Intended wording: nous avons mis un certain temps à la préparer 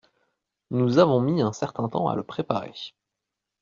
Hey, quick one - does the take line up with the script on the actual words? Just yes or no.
no